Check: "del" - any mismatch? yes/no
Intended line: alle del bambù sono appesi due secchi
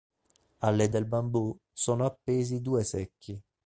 no